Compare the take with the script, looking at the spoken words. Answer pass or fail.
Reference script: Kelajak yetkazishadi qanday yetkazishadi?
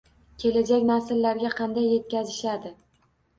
fail